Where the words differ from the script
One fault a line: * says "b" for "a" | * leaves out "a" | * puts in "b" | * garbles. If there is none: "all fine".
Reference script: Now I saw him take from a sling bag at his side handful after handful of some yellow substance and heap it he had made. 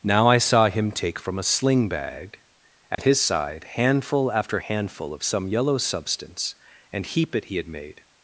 all fine